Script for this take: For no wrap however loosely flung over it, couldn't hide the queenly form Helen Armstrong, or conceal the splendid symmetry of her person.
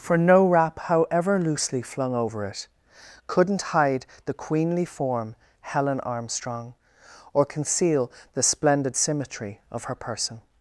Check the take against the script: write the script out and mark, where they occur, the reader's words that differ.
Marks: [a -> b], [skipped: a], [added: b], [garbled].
For no wrap however loosely flung over it, couldn't hide the queenly form Helen Armstrong, or conceal the splendid symmetry of her person.